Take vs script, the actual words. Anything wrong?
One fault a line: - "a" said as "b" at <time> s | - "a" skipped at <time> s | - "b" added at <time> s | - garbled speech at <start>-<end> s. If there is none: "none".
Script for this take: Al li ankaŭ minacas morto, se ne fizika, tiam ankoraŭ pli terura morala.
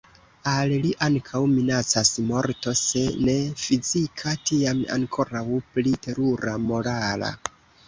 none